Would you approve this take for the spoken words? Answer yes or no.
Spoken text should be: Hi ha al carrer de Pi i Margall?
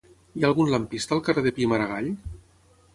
no